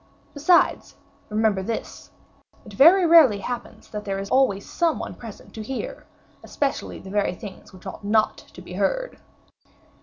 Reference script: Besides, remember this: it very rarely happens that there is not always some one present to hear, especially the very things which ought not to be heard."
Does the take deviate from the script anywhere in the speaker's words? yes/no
yes